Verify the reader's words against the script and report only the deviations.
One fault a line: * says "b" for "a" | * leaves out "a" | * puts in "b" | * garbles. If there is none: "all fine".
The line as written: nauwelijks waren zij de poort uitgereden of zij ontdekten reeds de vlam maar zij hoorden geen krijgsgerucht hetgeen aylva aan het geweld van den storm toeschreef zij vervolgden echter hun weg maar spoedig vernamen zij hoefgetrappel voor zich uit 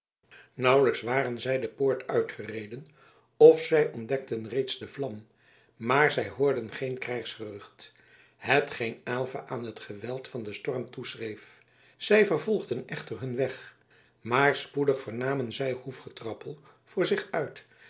all fine